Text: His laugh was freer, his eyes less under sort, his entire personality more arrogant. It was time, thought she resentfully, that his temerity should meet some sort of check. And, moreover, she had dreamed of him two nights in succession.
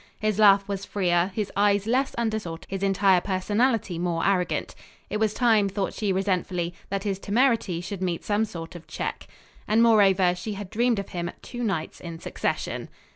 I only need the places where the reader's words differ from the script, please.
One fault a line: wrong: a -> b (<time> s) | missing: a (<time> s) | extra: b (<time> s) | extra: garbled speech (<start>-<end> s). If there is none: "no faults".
no faults